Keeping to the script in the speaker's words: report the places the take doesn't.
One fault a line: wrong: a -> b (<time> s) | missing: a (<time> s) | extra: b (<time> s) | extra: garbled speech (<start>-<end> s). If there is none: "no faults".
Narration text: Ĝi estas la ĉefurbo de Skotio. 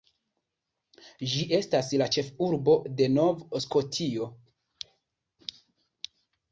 extra: Nov (3.2 s)